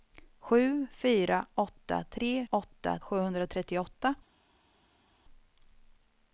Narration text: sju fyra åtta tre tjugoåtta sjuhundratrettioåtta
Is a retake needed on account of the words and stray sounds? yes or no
yes